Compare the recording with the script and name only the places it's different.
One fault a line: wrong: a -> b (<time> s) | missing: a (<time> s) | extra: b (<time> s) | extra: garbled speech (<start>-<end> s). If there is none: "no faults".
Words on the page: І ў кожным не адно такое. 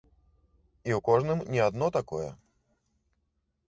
no faults